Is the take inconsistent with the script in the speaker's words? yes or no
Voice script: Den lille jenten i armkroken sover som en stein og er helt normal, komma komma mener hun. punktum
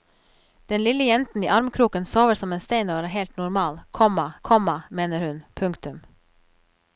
no